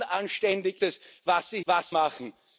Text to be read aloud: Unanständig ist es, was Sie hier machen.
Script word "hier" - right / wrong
wrong